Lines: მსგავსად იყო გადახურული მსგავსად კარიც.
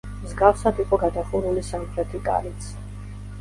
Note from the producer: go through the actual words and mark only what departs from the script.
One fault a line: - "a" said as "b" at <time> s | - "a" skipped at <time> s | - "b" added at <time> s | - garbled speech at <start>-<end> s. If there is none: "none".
- "მსგავსად" said as "სამხრეთი" at 1.7 s